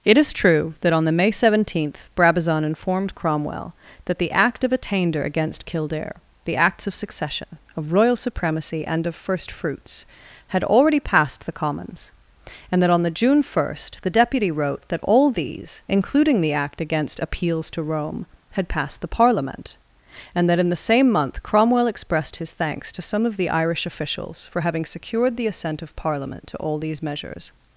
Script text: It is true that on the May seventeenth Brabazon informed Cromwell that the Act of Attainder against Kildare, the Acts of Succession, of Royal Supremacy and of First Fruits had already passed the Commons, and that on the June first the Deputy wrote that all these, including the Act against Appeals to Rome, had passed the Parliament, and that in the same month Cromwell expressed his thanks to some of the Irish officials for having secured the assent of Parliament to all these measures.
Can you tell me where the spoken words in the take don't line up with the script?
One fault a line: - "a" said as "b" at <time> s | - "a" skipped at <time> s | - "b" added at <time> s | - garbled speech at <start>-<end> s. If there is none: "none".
none